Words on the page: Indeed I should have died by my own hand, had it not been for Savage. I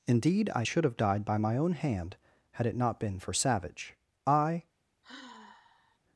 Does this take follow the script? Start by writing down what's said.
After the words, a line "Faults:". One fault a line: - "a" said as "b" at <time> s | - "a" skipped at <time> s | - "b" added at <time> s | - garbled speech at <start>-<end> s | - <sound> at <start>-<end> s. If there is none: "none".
Indeed I should have died by my own hand, had it not been for Savage. I
Faults:
- sigh at 5.0-6.0 s